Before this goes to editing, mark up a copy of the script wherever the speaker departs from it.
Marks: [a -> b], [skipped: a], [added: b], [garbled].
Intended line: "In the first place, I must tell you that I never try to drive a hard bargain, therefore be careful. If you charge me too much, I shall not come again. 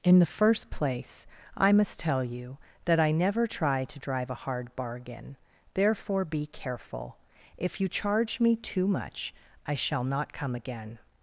"In the first place, I must tell you that I never try to drive a hard bargain, therefore be careful. If you charge me too much, I shall not come again.